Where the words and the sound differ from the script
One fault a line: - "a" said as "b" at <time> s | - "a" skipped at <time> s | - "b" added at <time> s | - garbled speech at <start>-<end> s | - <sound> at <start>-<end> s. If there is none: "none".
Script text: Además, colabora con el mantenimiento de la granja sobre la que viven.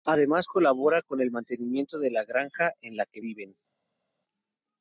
- "sobre" said as "en" at 2.8 s